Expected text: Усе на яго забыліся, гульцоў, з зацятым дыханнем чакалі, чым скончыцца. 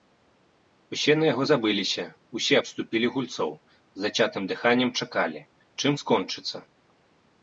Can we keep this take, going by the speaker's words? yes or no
no